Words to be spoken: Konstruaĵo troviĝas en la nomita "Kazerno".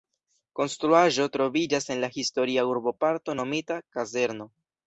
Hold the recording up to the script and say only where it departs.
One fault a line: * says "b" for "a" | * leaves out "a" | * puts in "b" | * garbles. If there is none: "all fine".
* puts in "historia urboparto"